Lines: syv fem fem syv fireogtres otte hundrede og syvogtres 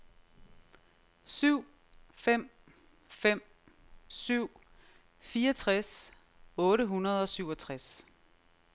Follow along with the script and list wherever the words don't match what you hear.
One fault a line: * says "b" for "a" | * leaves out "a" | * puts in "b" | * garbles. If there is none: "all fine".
all fine